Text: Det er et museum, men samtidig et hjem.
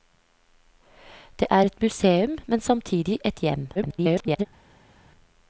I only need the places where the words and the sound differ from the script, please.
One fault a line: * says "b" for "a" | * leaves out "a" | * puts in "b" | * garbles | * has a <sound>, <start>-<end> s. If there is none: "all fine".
* garbles